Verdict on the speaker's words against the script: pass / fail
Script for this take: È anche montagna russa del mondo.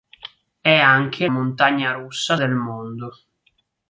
pass